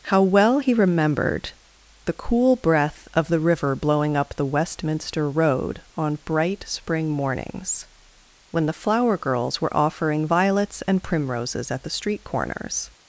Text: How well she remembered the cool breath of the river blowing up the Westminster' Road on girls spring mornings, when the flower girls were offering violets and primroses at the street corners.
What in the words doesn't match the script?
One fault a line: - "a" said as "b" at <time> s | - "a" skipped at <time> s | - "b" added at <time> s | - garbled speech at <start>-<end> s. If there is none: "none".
- "she" said as "he" at 0.6 s
- "girls" said as "bright" at 6.2 s